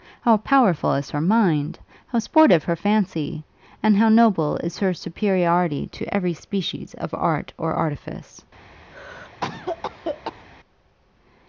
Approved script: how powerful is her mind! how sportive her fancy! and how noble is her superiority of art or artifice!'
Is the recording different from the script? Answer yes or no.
yes